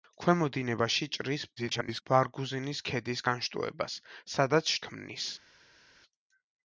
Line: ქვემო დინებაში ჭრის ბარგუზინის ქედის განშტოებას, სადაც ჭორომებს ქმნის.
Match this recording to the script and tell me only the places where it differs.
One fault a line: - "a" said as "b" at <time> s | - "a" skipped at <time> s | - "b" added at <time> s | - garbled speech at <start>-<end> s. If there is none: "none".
- garbled speech at 1.6-2.0 s
- "ჭორომებს" skipped at 4.7 s